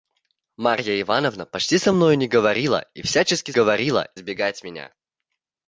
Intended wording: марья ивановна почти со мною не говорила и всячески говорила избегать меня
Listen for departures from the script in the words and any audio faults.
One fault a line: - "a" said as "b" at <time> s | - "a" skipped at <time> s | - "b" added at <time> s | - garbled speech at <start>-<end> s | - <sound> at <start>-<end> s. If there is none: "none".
none